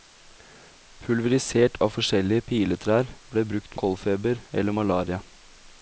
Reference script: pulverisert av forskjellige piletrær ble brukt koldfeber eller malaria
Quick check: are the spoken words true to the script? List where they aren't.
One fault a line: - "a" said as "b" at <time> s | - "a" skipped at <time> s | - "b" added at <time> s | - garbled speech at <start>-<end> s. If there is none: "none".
none